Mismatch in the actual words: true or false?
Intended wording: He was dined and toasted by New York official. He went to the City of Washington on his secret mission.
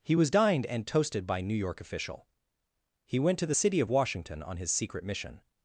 false